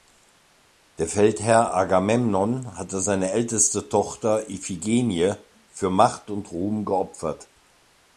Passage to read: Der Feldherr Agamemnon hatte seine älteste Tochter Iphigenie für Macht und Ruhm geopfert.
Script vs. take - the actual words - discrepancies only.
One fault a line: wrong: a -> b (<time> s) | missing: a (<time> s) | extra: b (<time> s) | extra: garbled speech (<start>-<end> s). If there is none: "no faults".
no faults